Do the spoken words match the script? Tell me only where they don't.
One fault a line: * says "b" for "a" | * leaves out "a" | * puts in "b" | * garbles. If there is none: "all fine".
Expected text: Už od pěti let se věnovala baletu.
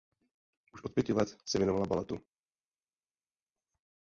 all fine